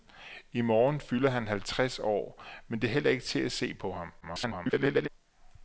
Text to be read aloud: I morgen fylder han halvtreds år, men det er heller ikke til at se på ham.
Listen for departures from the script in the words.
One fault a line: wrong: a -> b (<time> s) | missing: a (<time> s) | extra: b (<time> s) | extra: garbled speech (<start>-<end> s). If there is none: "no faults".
extra: garbled speech (4.2-5.1 s)